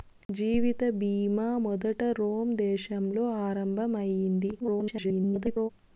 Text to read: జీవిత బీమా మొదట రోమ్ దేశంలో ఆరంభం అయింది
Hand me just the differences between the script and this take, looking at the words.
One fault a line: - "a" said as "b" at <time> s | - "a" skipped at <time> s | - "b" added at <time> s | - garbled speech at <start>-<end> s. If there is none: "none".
- garbled speech at 4.6-5.7 s